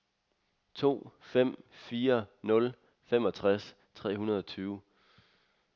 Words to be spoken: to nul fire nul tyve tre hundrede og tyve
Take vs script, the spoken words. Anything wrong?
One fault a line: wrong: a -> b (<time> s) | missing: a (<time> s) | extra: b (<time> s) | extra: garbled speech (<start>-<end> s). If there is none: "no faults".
wrong: nul -> fem (1.2 s)
wrong: tyve -> femogtres (3.0 s)